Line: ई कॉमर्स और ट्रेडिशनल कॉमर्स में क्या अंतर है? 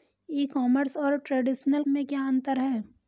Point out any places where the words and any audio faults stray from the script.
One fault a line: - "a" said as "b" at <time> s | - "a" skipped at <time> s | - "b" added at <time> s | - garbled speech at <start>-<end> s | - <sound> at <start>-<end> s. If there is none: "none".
- "कॉमर्स" skipped at 1.8 s